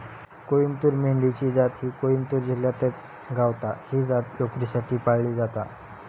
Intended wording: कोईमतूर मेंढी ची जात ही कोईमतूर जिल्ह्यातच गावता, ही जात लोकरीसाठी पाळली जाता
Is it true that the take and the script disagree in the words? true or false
false